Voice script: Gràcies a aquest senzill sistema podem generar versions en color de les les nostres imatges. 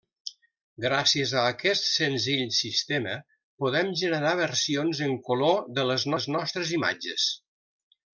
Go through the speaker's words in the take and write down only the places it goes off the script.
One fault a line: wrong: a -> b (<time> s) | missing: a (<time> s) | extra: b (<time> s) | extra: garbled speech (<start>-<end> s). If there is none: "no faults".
no faults